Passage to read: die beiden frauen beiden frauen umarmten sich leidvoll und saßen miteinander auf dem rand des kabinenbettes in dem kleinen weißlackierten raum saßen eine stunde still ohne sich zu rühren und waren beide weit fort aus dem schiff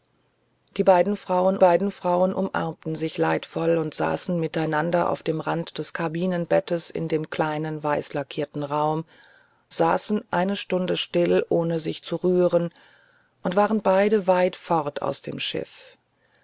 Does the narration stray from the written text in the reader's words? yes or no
no